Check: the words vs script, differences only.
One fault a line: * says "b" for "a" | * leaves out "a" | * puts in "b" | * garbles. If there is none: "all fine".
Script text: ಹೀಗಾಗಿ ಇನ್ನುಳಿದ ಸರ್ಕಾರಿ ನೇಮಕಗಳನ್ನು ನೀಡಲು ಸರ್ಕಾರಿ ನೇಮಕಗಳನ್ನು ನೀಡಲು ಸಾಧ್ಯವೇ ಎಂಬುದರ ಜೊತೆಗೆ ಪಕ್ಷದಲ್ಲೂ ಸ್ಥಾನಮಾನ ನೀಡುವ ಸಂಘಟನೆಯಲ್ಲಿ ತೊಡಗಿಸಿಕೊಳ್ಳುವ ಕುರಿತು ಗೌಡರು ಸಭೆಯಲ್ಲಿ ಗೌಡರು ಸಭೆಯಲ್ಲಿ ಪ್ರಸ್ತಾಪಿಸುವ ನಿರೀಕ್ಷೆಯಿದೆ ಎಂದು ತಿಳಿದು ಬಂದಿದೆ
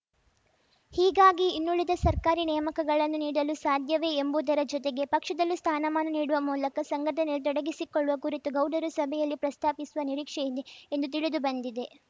* leaves out "ಸರ್ಕಾರಿ ನೇಮಕಗಳನ್ನು ನೀಡಲು"
* puts in "ಮೂಲಕ"
* leaves out "ಗೌಡರು ಸಭೆಯಲ್ಲಿ"